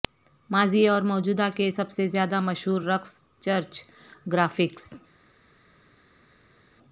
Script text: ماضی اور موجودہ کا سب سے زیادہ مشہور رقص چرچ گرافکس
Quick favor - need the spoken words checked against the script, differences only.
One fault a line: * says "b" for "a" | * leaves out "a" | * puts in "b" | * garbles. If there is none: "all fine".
* says "کے" for "کا"